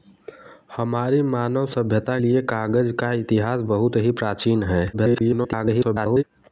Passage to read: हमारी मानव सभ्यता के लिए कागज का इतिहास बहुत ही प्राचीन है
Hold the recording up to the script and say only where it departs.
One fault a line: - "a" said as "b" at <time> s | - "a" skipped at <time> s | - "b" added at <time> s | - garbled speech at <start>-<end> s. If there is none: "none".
- "के" skipped at 2.2 s
- garbled speech at 4.9-6.2 s